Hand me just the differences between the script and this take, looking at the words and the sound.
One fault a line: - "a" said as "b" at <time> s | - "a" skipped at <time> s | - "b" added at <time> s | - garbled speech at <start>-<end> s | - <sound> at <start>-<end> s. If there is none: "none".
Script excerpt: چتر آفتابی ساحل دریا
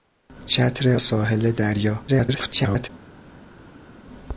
- "آفتابی" skipped at 1.0 s
- garbled speech at 2.1-2.9 s